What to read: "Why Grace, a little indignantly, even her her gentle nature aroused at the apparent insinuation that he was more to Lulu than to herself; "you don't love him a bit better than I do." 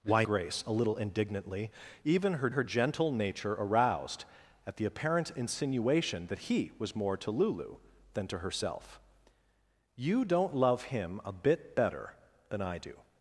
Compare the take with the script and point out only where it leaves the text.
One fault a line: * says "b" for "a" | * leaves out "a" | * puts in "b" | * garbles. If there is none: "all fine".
all fine